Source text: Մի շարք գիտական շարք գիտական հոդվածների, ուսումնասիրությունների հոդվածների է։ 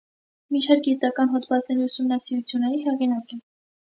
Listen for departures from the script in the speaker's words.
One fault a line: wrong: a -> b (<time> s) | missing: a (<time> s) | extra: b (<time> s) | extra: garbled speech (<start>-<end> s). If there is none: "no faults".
missing: շարք գիտական (1.3 s)
wrong: հոդվածների -> հեղինակ (2.9 s)